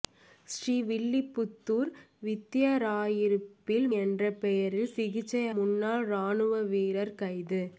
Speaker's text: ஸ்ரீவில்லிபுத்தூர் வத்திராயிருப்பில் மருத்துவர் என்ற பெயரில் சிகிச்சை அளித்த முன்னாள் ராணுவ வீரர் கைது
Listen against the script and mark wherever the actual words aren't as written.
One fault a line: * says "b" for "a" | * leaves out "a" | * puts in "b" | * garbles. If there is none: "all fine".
* leaves out "மருத்துவர்"
* leaves out "அளித்த"